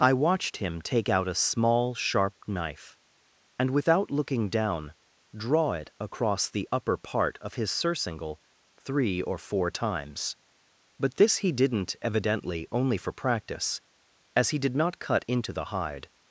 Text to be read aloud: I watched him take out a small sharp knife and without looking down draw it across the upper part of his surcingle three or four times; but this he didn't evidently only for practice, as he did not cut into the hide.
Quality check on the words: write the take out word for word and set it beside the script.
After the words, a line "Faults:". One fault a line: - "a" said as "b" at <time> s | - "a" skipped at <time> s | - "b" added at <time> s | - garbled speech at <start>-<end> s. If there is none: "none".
I watched him take out a small sharp knife and without looking down draw it across the upper part of his surcingle three or four times; but this he didn't evidently only for practice, as he did not cut into the hide.
Faults:
none